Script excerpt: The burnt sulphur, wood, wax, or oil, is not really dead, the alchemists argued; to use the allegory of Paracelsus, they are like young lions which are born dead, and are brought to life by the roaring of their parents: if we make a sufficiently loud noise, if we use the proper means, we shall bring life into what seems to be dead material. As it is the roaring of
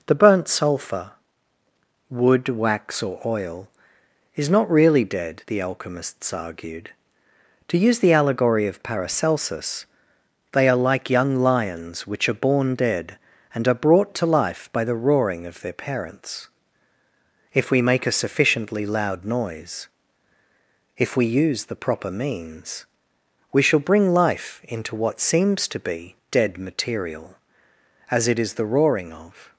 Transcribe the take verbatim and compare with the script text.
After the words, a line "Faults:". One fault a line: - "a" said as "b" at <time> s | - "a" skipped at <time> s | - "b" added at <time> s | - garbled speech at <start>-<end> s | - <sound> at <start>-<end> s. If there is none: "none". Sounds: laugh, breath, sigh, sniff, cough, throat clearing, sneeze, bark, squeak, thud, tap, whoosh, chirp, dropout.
The burnt sulphur, wood, wax, or oil, is not really dead, the alchemists argued; to use the allegory of Paracelsus, they are like young lions which are born dead, and are brought to life by the roaring of their parents: if we make a sufficiently loud noise, if we use the proper means, we shall bring life into what seems to be dead material. As it is the roaring of
Faults:
none